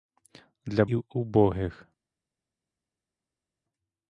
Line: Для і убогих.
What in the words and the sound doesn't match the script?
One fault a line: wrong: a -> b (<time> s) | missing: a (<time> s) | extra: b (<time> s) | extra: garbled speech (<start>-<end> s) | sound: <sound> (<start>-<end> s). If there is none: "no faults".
no faults